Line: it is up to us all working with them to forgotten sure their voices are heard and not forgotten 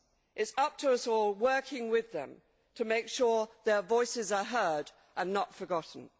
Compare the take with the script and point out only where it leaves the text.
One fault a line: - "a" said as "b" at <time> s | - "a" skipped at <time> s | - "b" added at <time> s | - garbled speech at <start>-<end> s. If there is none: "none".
- "forgotten" said as "make" at 2.9 s